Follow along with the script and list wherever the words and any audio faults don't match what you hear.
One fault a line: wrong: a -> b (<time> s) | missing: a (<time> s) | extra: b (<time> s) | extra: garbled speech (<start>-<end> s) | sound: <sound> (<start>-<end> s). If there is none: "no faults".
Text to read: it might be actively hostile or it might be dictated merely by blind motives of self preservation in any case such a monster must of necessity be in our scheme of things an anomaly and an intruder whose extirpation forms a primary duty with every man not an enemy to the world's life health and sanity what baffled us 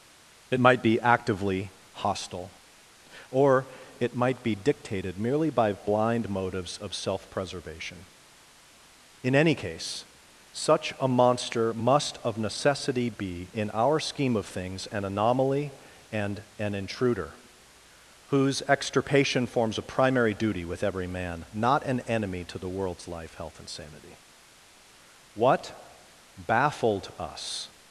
no faults